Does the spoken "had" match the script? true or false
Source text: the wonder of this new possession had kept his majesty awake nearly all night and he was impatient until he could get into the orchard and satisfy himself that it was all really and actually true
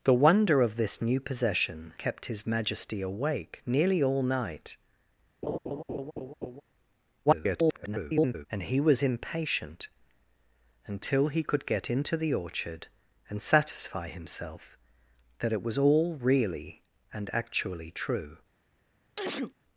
false